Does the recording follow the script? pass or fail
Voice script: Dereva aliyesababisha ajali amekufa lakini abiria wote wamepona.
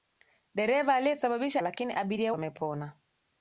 fail